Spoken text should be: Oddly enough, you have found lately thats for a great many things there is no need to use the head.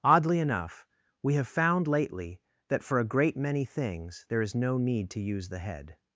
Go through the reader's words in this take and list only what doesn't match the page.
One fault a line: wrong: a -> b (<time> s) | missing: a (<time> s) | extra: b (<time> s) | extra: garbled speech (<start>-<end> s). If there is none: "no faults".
wrong: you -> we (1.2 s)
wrong: thats -> that (2.7 s)